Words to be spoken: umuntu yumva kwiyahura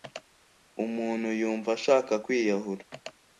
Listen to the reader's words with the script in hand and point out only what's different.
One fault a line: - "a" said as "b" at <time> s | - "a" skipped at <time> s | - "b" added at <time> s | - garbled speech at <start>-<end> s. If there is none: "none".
- "ashaka" added at 1.8 s